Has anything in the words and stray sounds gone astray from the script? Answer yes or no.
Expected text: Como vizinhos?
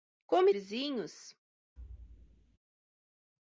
yes